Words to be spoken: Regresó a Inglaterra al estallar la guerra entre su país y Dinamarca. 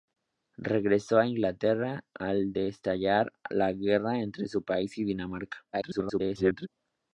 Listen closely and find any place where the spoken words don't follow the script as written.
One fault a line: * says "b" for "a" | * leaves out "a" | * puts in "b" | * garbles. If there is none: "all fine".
* garbles